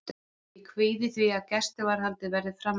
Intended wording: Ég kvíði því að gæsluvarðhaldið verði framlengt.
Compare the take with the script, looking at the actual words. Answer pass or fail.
pass